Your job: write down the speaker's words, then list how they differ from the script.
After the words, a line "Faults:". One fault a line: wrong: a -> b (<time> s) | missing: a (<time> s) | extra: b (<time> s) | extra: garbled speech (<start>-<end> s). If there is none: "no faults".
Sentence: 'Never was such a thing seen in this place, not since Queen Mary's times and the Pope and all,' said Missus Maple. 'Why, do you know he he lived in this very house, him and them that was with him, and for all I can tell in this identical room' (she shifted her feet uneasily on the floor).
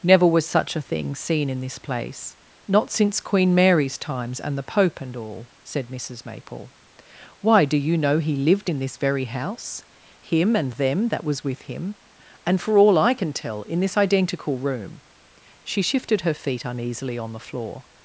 'Never was such a thing seen in this place, not since Queen Mary's times and the Pope and all,' said Missus Maple. 'Why, do you know he lived in this very house, him and them that was with him, and for all I can tell in this identical room' (she shifted her feet uneasily on the floor).
Faults:
missing: he (8.4 s)